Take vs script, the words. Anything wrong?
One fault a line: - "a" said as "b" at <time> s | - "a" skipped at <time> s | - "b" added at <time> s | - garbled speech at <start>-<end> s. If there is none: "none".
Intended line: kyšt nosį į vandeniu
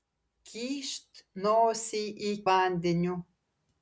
none